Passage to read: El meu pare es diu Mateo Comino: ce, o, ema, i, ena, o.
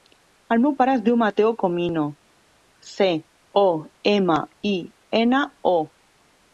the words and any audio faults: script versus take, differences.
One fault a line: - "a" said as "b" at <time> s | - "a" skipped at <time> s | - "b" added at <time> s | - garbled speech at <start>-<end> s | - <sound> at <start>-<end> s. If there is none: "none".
none